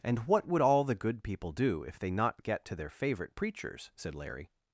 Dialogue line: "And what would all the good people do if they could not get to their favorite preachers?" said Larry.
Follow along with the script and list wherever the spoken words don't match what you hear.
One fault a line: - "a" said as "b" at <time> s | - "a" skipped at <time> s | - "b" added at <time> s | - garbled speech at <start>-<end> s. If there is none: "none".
- "could" skipped at 2.1 s